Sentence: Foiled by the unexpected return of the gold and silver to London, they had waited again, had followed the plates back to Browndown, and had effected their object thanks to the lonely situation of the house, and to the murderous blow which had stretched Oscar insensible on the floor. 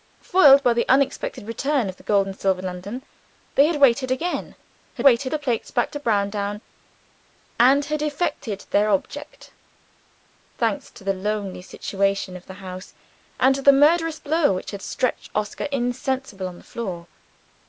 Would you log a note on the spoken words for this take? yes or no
yes